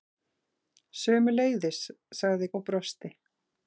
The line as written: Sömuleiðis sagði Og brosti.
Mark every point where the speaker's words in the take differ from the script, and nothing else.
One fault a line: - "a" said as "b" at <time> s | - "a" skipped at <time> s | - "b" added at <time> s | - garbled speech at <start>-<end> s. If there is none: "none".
none